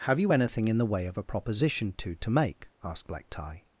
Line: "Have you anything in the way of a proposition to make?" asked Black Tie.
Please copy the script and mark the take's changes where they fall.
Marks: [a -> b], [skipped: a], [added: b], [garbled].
"Have you anything in the way of a proposition to [added: to] make?" asked Black Tie.